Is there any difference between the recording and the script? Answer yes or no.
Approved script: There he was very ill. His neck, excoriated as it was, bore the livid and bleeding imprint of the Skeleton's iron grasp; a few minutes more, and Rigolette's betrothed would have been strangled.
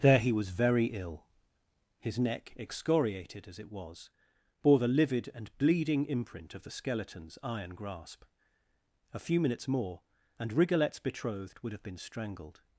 no